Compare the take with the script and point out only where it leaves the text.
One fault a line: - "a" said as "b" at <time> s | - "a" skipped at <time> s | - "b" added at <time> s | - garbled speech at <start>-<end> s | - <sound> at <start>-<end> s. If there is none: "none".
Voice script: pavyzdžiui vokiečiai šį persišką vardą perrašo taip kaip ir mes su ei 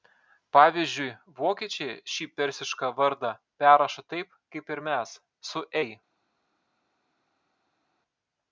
none